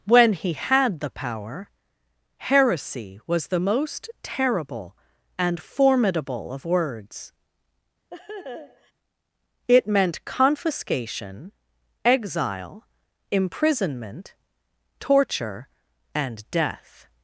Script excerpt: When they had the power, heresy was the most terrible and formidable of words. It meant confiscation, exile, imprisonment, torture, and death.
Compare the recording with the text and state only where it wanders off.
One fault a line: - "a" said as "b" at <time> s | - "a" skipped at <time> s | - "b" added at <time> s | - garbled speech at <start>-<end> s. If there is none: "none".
- "they" said as "he" at 0.3 s